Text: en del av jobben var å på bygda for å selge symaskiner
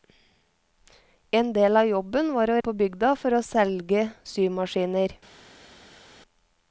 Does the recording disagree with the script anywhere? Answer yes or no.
no